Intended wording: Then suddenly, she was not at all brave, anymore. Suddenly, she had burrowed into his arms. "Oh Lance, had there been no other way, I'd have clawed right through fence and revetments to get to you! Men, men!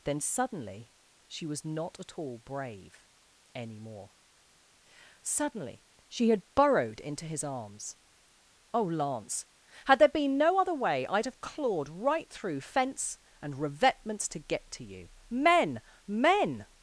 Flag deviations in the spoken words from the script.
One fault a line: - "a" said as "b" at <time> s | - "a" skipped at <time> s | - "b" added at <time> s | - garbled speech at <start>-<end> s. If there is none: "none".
none